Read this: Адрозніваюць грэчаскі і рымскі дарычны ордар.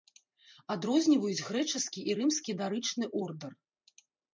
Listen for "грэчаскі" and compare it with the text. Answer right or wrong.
right